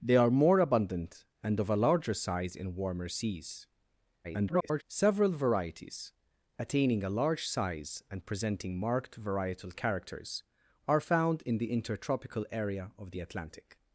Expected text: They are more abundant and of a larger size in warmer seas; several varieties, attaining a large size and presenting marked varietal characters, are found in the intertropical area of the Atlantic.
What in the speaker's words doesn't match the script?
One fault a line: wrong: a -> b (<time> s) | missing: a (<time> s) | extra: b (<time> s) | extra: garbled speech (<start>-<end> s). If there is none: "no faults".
extra: garbled speech (4.2-4.8 s)